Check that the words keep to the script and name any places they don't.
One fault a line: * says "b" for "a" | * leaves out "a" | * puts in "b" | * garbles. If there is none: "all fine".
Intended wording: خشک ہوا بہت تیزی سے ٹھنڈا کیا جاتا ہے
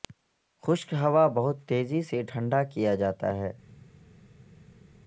all fine